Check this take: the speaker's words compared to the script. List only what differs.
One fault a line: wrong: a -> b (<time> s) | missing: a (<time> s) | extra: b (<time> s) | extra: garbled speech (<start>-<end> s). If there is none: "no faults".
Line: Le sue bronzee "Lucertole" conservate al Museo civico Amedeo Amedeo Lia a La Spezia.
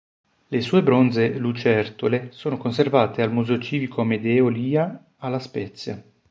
extra: sono (2.3 s)
missing: Amedeo (4.5 s)